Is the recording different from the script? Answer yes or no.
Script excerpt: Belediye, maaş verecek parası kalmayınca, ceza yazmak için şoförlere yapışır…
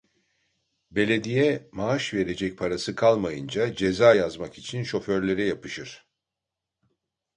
no